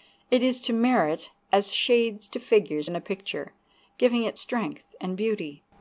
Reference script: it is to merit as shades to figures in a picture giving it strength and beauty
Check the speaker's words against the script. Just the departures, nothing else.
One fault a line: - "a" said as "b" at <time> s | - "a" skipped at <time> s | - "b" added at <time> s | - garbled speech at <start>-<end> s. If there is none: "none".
none